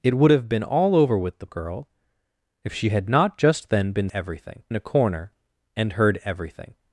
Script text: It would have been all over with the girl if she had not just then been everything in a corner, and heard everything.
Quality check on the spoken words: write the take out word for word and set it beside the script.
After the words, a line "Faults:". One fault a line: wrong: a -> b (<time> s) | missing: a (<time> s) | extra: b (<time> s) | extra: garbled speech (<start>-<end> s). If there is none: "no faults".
It would have been all over with the girl if she had not just then been everything in a corner, and heard everything.
Faults:
no faults